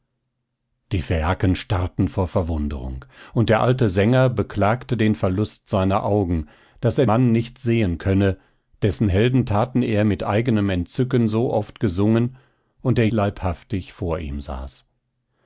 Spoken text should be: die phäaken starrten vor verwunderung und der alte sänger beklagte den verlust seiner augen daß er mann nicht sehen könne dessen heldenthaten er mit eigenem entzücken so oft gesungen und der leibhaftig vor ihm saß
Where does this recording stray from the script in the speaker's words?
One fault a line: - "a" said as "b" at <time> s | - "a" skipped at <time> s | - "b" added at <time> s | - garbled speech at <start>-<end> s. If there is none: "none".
none